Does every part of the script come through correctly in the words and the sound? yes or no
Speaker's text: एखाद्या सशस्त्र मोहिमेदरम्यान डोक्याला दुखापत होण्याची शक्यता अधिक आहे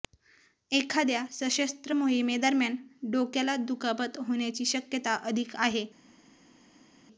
yes